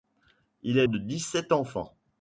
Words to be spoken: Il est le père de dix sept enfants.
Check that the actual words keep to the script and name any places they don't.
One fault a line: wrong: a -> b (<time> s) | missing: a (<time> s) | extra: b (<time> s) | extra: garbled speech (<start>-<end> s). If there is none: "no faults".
missing: le père (0.9 s)